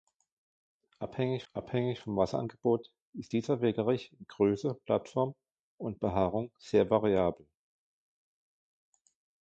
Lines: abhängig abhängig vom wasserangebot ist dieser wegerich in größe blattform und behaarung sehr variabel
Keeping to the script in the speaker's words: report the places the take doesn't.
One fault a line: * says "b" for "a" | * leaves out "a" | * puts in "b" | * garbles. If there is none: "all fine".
all fine